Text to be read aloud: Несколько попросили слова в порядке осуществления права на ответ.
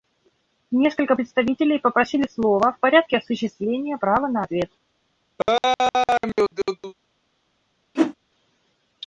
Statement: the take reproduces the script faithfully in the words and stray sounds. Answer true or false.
false